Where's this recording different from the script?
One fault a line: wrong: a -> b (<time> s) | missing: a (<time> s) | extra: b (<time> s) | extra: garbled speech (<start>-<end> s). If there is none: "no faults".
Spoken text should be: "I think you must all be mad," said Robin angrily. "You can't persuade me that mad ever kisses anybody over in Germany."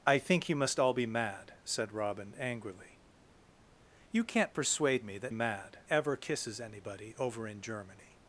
no faults